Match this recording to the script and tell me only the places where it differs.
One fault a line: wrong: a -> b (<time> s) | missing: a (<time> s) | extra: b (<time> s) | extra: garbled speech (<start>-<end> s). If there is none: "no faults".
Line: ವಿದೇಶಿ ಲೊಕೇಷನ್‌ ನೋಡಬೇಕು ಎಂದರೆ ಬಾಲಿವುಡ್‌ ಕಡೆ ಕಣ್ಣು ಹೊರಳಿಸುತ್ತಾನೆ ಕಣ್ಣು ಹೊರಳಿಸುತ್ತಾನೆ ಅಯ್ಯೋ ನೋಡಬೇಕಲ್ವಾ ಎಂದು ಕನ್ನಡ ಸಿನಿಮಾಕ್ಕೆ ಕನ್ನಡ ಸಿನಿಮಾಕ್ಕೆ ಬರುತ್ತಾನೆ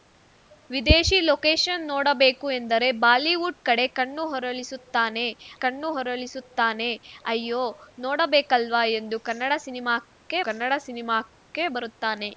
no faults